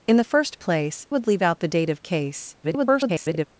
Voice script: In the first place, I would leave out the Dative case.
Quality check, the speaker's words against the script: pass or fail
fail